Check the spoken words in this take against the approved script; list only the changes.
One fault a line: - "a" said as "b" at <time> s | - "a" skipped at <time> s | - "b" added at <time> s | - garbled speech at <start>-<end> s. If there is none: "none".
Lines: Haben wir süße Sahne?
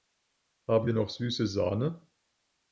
- "noch" added at 0.9 s